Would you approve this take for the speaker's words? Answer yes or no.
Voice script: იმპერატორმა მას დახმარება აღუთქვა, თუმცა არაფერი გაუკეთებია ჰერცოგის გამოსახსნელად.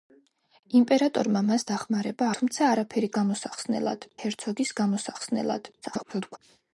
no